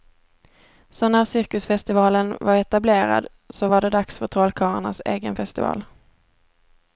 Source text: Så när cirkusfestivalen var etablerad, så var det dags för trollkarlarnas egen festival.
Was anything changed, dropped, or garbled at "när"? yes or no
no